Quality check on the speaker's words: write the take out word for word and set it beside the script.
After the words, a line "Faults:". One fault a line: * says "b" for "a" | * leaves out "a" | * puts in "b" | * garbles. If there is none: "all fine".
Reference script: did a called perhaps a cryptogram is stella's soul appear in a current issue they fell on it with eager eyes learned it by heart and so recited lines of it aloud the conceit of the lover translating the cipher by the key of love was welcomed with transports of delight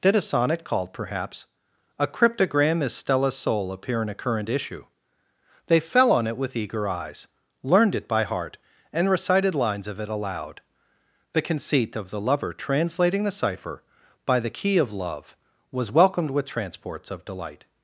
did a sonnet called perhaps a cryptogram is stella's soul appear in a current issue they fell on it with eager eyes learned it by heart and recited lines of it aloud the conceit of the lover translating the cipher by the key of love was welcomed with transports of delight
Faults:
* puts in "sonnet"
* leaves out "so"